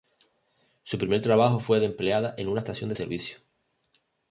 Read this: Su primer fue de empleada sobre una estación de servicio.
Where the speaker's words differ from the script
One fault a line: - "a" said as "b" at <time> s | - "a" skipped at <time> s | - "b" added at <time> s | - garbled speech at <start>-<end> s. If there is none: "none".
- "trabajo" added at 1.2 s
- "sobre" said as "en" at 2.4 s